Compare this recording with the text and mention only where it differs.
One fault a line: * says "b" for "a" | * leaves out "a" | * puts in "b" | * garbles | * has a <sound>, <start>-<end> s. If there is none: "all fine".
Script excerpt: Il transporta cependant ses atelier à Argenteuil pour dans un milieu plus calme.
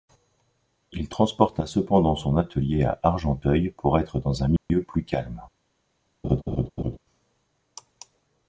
* says "son" for "ses"
* puts in "être"
* has a dropout, 4.6-4.7 s
* has a laugh, 6.2-7.0 s